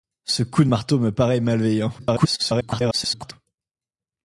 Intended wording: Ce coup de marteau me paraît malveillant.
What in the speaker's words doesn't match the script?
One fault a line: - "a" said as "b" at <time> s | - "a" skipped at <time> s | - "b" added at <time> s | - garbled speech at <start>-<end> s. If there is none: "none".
- garbled speech at 2.0-3.3 s